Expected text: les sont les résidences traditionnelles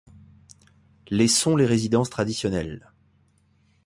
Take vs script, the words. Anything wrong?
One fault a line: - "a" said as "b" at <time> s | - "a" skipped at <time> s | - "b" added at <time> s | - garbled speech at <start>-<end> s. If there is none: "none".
none